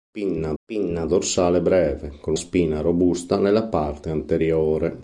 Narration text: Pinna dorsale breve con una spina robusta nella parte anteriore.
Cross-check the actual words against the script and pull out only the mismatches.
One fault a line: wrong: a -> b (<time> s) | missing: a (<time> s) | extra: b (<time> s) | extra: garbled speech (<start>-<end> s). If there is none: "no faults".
extra: pinna (0.6 s)
missing: una (2.3 s)